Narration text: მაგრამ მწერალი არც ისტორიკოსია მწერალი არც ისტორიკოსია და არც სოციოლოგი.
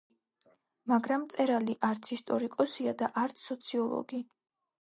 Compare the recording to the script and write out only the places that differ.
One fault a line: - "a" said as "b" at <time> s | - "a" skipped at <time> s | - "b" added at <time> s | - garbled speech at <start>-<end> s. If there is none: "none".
- "მწერალი არც ისტორიკოსია" skipped at 3.0 s